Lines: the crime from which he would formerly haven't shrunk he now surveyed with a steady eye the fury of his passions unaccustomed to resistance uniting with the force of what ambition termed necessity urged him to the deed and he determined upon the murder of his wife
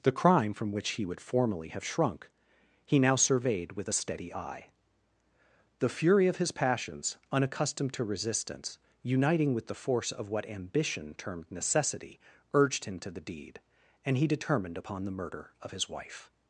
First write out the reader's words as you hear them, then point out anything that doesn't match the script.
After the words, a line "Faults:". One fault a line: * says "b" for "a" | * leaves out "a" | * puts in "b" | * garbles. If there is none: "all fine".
the crime from which he would formerly have shrunk he now surveyed with a steady eye the fury of his passions unaccustomed to resistance uniting with the force of what ambition termed necessity urged him to the deed and he determined upon the murder of his wife
Faults:
* says "have" for "haven't"